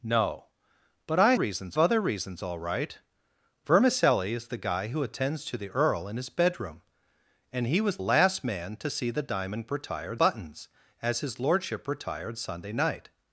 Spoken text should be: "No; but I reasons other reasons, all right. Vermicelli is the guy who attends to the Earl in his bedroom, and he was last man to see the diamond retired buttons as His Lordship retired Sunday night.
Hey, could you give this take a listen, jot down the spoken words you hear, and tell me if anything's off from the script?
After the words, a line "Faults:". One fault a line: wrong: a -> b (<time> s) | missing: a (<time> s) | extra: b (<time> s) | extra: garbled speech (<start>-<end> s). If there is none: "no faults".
"No; but I reasons other reasons, all right. Vermicelli is the guy who attends to the Earl in his bedroom, and he was last man to see the diamond retired buttons as His Lordship retired Sunday night.
Faults:
no faults